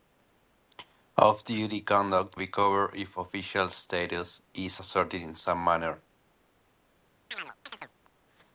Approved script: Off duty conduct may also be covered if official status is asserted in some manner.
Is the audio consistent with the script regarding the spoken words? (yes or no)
no